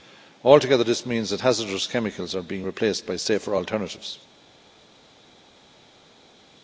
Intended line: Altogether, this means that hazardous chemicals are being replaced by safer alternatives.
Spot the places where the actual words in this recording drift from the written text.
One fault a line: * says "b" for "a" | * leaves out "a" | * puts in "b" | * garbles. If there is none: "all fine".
all fine